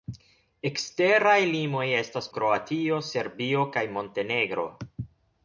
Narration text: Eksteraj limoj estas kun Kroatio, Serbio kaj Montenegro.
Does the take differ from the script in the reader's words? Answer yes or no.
yes